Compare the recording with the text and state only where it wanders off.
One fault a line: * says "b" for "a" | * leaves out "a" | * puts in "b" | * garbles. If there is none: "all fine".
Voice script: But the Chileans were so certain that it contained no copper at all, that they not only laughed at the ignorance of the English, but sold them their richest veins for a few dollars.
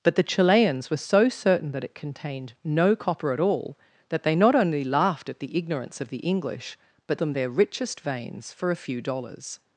* leaves out "sold"